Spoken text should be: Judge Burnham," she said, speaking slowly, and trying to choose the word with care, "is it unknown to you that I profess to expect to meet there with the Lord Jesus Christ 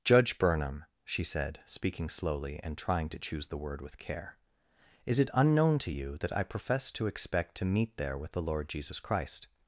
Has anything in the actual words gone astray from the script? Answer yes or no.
no